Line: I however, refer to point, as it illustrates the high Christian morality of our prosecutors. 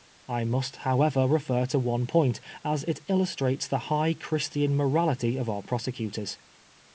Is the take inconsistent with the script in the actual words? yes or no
yes